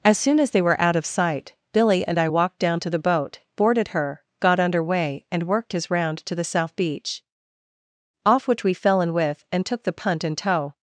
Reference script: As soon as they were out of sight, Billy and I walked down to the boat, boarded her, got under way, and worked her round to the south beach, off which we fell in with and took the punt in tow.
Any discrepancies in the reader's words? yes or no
yes